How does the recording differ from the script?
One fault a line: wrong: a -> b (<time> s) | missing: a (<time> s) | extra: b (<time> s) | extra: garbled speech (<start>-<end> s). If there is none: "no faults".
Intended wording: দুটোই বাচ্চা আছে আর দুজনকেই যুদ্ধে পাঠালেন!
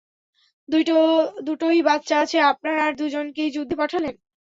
extra: আপনার (2.5 s)